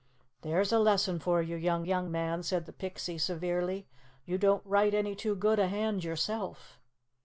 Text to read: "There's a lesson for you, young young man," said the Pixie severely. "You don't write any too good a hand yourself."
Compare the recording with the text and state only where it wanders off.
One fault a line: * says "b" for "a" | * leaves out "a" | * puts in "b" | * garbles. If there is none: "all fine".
all fine